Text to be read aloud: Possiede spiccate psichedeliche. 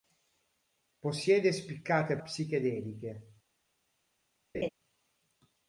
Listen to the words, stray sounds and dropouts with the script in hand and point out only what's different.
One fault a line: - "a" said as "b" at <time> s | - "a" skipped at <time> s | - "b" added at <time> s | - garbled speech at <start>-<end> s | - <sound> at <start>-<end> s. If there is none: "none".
- laugh at 4.5-4.7 s